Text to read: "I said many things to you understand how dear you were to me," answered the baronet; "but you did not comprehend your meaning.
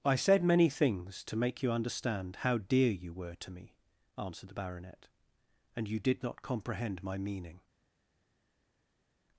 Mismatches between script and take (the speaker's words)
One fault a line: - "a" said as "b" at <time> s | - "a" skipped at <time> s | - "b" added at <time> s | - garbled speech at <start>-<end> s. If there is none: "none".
- "make" added at 1.4 s
- "but" said as "and" at 5.8 s
- "your" said as "my" at 7.0 s